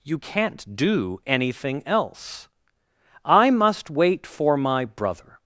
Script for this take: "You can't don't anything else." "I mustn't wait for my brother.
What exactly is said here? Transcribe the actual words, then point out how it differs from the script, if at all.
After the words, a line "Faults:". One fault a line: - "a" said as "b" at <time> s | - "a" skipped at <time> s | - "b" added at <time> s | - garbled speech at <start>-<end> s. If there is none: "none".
"You can't do anything else." "I must wait for my brother.
Faults:
- "don't" said as "do" at 0.8 s
- "mustn't" said as "must" at 3.5 s